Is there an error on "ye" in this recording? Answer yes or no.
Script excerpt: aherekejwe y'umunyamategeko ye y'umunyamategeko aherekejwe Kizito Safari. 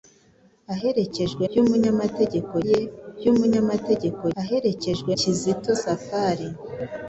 no